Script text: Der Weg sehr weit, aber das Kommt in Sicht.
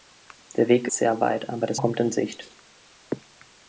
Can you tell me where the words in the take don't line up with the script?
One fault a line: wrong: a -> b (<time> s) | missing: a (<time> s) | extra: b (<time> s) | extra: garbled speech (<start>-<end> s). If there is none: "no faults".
no faults